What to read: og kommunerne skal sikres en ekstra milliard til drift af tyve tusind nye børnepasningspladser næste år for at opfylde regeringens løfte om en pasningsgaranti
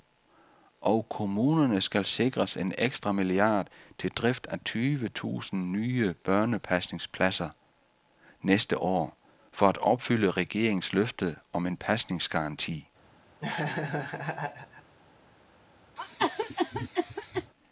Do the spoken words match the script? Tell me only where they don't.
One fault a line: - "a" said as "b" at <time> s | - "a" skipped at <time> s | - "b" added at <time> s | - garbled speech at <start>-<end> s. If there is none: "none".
none